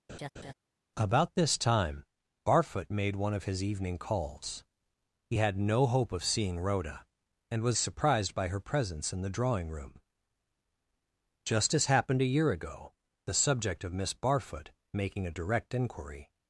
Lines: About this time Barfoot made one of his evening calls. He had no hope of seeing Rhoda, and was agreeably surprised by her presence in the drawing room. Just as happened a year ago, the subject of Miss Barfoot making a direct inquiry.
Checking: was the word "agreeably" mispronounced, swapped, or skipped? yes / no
yes